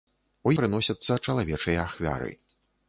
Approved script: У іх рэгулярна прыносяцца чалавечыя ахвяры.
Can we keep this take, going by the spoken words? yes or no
no